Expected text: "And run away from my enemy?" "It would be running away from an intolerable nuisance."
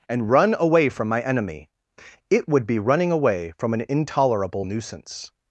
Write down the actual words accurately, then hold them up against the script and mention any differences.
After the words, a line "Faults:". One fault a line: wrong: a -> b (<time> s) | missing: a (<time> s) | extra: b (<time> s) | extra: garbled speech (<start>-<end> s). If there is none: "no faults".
"And run away from my enemy?" "It would be running away from an intolerable nuisance."
Faults:
no faults